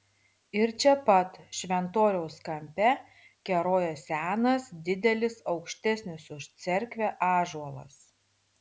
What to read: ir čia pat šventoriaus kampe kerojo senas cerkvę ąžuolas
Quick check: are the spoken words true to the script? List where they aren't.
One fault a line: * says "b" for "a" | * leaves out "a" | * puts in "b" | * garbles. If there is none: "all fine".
* puts in "didelis aukštesnis už"